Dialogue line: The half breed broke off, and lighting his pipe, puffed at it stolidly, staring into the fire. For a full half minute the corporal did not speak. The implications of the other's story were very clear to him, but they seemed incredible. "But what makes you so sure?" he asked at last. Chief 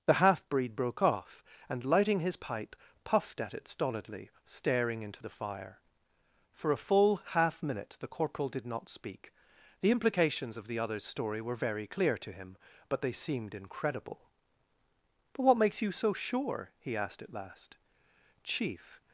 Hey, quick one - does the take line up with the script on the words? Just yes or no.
yes